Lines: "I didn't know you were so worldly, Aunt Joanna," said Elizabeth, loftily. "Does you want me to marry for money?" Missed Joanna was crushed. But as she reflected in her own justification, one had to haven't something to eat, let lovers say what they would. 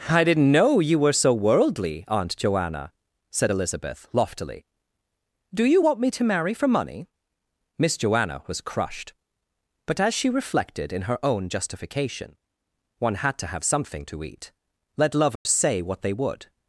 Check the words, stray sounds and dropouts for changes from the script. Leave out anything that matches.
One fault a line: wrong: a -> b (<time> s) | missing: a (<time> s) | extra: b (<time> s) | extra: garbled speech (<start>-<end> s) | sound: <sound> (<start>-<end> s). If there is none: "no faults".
wrong: Does -> Do (5.5 s)
wrong: Missed -> Miss (7.8 s)
wrong: haven't -> have (13.5 s)
sound: dropout (15.4-15.5 s)